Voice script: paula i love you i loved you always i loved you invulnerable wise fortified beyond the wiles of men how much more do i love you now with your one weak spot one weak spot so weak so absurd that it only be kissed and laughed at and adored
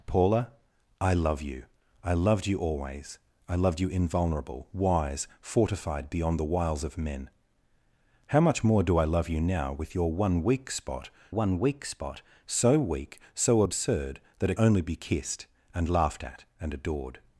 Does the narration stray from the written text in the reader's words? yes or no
no